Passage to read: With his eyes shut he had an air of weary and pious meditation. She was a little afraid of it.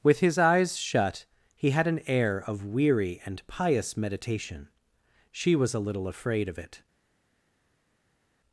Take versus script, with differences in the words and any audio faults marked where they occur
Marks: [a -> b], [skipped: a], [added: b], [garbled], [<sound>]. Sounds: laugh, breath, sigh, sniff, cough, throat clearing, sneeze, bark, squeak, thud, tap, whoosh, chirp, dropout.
With his eyes shut he had an air of weary and pious meditation. She was a little afraid of it.